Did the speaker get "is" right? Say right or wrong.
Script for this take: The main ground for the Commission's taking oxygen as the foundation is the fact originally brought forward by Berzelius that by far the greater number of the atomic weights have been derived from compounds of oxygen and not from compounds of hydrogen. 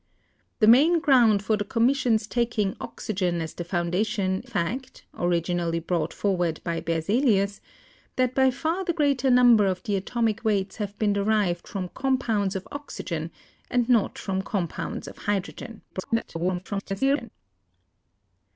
wrong